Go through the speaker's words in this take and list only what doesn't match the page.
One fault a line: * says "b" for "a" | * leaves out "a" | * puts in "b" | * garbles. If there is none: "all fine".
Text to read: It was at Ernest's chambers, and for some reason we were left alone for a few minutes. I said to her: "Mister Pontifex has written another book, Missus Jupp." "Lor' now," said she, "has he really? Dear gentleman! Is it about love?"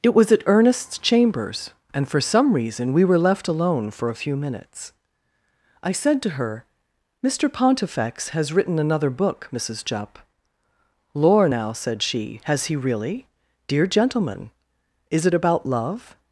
all fine